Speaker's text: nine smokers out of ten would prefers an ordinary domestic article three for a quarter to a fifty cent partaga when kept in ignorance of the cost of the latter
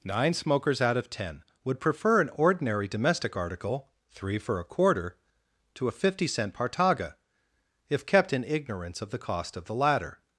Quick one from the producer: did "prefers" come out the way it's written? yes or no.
no